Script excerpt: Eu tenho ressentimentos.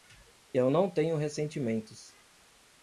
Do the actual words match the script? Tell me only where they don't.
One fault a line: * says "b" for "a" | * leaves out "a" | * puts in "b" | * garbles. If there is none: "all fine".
* puts in "não"